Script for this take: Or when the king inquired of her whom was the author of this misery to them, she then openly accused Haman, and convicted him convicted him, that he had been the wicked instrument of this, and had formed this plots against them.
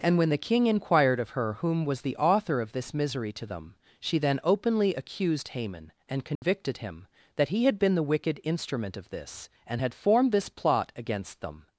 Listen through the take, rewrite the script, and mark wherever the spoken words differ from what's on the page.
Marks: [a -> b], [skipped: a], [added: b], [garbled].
[Or -> And] when the king inquired of her whom was the author of this misery to them, she then openly accused Haman, and convicted him [skipped: convicted him,] that he had been the wicked instrument of this, and had formed this [plots -> plot] against them.